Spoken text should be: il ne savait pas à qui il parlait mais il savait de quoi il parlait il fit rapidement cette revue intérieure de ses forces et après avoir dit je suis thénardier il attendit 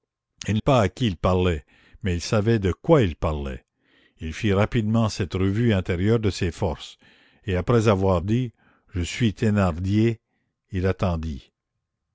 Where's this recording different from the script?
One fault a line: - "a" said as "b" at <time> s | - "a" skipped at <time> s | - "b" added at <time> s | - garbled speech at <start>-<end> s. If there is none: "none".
- "ne savait" skipped at 0.6 s